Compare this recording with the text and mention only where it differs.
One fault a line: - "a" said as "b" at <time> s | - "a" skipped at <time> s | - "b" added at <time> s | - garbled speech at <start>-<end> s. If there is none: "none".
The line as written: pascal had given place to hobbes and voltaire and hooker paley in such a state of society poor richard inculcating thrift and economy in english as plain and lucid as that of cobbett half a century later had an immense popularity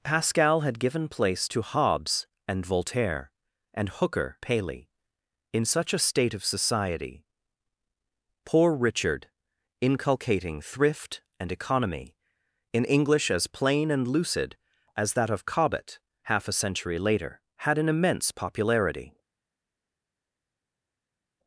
none